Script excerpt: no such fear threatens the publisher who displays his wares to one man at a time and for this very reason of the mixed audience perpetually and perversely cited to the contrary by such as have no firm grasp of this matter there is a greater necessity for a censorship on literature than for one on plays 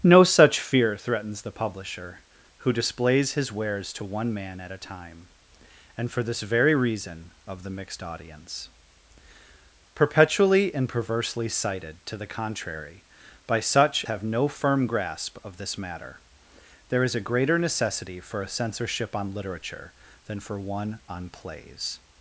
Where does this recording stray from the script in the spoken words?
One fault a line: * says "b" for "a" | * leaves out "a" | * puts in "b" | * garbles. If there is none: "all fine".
* leaves out "as"